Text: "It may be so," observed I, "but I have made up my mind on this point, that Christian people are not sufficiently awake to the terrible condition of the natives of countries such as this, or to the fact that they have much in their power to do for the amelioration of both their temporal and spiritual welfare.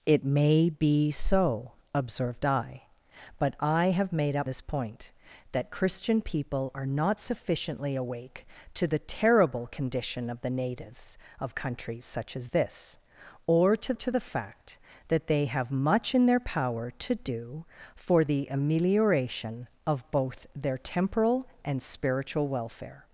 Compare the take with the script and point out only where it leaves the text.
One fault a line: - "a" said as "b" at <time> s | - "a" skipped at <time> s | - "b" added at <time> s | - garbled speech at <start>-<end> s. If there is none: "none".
- "my mind on" skipped at 4.5 s
- "to" added at 13.9 s